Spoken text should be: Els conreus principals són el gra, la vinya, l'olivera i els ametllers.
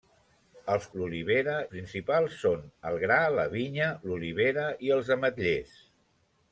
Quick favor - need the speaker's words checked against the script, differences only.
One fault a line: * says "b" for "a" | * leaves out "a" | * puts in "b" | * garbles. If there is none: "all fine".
* says "l'olivera" for "conreus"